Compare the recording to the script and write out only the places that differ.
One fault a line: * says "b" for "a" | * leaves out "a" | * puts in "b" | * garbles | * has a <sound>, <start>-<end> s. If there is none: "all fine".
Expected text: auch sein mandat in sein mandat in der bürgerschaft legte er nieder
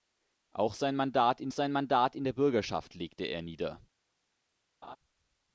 * has a laugh, 4.8-5.0 s